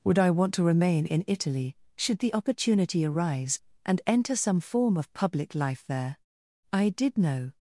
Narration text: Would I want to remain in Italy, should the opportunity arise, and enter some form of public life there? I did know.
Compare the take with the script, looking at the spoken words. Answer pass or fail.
pass